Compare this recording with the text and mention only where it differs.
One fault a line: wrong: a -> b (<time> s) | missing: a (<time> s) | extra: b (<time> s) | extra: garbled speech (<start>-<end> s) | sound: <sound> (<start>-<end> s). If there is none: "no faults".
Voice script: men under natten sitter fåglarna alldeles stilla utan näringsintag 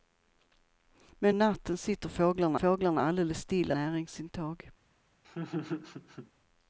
missing: under (1.4 s)
extra: fåglarna (2.5 s)
missing: utan (3.7 s)
sound: laugh (5.2-6.3 s)